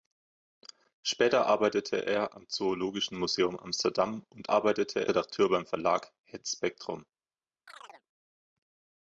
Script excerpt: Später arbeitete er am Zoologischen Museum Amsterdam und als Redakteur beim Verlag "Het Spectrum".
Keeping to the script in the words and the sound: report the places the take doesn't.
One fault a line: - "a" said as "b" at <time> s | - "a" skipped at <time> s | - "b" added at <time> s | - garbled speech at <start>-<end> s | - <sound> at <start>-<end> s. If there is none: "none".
- "als" said as "arbeitete" at 4.5 s
- chirp at 7.7-8.1 s